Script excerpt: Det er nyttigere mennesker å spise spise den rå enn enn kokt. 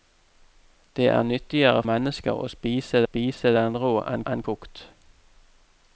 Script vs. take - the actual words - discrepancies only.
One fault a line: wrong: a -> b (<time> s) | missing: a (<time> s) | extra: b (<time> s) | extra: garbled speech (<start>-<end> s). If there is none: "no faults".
no faults